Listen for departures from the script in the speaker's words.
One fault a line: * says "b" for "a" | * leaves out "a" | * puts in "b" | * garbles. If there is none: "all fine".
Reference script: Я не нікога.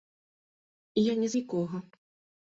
all fine